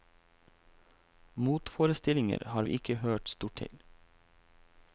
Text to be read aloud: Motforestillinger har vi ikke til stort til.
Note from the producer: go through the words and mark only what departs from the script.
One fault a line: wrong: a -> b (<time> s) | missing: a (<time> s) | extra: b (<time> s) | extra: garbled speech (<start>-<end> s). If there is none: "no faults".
wrong: til -> hørt (2.9 s)